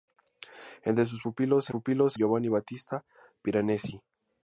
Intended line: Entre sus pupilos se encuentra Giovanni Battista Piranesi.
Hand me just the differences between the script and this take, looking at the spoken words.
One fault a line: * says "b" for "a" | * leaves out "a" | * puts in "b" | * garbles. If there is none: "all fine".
* says "pupilos" for "encuentra"